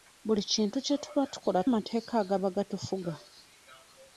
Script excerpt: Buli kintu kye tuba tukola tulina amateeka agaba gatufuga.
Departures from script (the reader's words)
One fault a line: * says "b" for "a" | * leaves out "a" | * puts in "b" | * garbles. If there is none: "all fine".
* leaves out "tulina"